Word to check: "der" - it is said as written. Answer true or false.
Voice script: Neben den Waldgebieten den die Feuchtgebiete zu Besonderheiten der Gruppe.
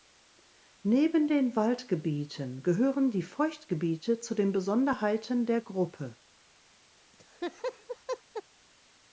true